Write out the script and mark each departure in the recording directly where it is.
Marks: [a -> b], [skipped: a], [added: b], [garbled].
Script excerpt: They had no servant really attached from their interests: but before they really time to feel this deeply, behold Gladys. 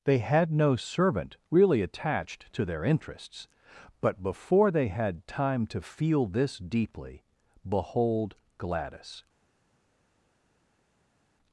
They had no servant really attached [from -> to] their interests: but before they [really -> had] time to feel this deeply, behold Gladys.